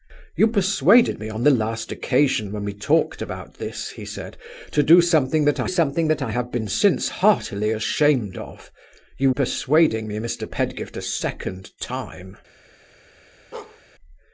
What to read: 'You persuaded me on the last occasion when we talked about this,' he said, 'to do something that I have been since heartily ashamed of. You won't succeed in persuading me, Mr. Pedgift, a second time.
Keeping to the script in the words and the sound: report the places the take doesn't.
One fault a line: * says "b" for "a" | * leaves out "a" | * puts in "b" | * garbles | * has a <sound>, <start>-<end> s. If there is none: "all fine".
* puts in "something that I"
* leaves out "won't succeed in"
* has a bark, 13.5-13.8 s